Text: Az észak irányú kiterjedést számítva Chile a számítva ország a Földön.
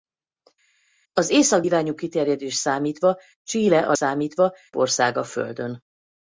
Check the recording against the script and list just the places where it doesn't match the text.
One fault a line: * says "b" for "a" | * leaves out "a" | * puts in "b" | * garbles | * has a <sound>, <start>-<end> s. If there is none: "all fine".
all fine